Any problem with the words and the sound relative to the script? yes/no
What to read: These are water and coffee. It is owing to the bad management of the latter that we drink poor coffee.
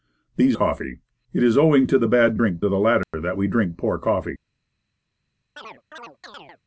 yes